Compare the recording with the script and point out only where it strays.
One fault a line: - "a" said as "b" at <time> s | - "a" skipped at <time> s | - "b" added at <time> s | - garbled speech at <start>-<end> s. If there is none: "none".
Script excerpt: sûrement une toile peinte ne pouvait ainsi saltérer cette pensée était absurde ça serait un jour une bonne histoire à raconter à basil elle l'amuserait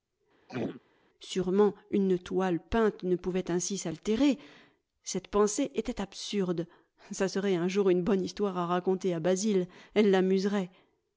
none